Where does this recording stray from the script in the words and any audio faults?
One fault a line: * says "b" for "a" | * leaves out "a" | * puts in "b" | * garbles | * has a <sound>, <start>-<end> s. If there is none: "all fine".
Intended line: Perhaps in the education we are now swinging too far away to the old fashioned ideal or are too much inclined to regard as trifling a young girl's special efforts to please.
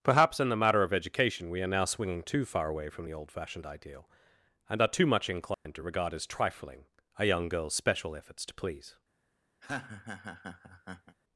* puts in "matter of"
* says "from" for "to"
* says "and" for "or"
* has a dropout, 5.5-5.7 s
* has a laugh, 9.6-11.2 s